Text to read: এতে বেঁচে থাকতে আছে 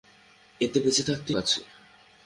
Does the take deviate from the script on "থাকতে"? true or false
false